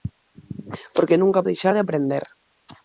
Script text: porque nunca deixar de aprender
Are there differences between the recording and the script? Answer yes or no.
no